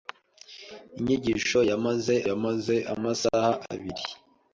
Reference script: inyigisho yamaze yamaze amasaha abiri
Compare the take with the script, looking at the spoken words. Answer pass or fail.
pass